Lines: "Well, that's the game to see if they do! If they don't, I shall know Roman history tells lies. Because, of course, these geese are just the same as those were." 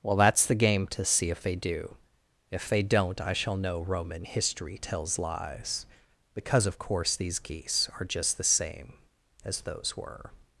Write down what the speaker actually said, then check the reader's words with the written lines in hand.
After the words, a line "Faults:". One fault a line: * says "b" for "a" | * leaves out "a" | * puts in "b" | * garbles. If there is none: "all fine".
"Well, that's the game to see if they do! If they don't, I shall know Roman history tells lies. Because, of course, these geese are just the same as those were."
Faults:
all fine